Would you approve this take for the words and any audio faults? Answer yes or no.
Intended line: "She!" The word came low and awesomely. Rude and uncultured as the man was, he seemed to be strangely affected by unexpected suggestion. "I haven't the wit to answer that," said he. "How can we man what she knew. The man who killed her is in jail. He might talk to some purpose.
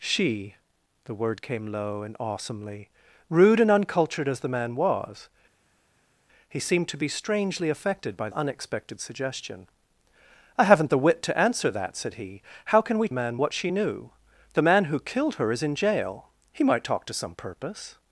yes